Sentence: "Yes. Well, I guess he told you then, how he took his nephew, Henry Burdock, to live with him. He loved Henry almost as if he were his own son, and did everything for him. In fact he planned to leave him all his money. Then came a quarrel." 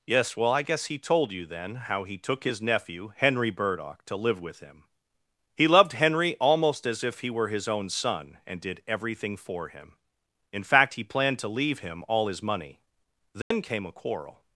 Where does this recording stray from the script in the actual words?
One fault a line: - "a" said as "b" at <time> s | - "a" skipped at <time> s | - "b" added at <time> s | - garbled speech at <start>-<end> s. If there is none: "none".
none